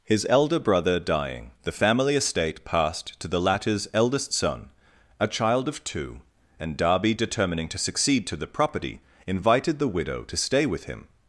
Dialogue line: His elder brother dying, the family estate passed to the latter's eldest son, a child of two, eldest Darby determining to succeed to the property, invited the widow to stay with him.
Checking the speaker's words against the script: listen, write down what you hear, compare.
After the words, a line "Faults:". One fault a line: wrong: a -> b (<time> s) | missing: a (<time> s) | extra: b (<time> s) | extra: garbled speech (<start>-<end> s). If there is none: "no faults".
His elder brother dying, the family estate passed to the latter's eldest son, a child of two, and Darby determining to succeed to the property, invited the widow to stay with him.
Faults:
wrong: eldest -> and (6.6 s)